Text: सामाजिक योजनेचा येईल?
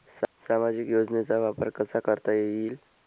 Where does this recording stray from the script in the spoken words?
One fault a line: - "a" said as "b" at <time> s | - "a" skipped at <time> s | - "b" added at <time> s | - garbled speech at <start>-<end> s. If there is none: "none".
- "वापर कसा करता" added at 1.4 s